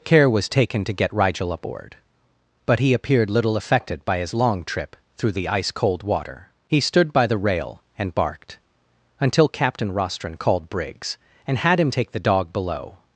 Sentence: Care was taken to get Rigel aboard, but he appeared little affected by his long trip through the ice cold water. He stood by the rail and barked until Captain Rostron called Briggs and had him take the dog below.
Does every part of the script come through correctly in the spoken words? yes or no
yes